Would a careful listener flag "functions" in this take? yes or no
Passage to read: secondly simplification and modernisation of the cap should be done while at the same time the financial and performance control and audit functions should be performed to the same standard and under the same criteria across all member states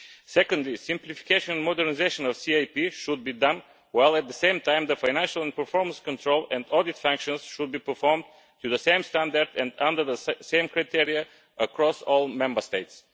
no